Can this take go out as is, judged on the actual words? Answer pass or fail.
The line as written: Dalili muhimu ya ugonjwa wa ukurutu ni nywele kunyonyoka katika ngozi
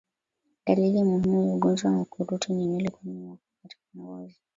pass